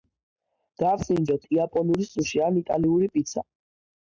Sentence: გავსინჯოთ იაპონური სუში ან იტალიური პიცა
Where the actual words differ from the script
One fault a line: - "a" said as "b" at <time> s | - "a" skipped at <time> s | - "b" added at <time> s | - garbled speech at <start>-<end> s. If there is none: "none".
none